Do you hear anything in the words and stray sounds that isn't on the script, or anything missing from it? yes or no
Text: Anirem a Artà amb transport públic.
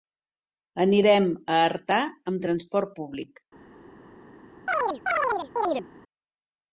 yes